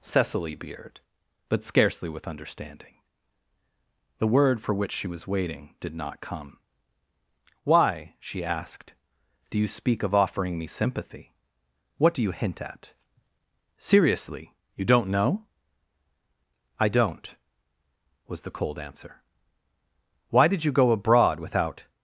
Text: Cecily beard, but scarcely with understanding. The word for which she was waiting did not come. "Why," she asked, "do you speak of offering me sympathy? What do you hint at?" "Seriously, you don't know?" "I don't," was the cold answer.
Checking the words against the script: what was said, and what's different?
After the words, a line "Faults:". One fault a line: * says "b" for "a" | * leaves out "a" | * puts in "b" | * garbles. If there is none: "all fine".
Cecily beard, but scarcely with understanding. The word for which she was waiting did not come. "Why," she asked, "do you speak of offering me sympathy? What do you hint at?" "Seriously, you don't know?" "I don't," was the cold answer. "Why did you go abroad without
Faults:
* puts in "Why did you go abroad without"